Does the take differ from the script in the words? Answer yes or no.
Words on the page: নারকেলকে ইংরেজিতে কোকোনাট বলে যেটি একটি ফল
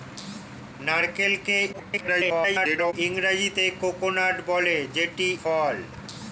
yes